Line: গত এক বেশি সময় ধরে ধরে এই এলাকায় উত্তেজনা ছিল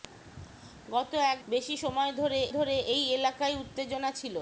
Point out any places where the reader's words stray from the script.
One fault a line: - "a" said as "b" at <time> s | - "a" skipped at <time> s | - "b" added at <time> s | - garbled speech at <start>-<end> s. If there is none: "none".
none